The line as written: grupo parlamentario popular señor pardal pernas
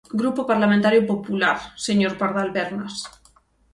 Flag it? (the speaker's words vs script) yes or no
no